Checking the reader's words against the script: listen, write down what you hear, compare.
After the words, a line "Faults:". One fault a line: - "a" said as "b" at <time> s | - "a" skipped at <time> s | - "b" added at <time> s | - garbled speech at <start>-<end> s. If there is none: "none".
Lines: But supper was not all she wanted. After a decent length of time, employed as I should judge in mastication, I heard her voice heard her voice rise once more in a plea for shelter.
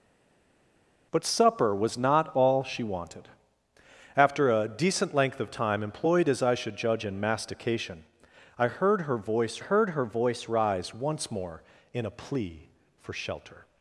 But supper was not all she wanted. After a decent length of time, employed as I should judge in mastication, I heard her voice heard her voice rise once more in a plea for shelter.
Faults:
none